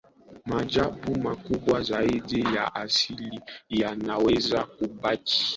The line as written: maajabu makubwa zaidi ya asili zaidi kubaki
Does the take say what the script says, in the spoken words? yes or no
no